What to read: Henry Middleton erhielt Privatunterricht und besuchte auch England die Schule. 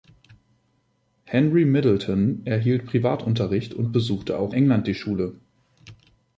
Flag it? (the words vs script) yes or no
no